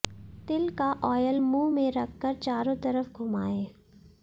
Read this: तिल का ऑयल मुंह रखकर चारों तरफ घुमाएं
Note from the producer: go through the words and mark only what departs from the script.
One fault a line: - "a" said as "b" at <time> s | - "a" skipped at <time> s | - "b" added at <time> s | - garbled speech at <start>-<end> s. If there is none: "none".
- "में" added at 1.7 s